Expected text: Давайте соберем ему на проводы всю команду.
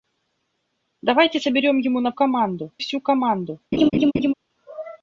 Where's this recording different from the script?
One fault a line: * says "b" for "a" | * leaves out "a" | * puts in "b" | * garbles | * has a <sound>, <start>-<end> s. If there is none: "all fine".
* says "команду" for "проводы"
* has a laugh, 3.7-4.3 s